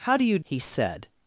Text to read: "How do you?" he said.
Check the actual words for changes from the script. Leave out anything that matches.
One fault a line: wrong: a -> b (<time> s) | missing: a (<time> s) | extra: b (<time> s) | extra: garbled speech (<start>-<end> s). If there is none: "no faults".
no faults